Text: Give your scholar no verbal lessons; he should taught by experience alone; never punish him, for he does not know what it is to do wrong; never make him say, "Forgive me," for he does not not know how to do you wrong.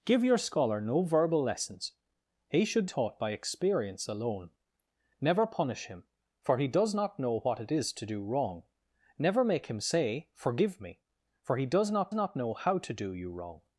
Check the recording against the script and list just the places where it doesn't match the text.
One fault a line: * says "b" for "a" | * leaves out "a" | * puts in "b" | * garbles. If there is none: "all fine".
all fine